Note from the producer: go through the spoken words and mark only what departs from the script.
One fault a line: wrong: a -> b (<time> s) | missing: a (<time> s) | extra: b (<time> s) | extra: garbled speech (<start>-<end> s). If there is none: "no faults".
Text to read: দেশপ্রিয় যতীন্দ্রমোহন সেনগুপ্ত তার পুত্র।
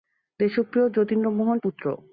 missing: সেনগুপ্ত তার (1.6 s)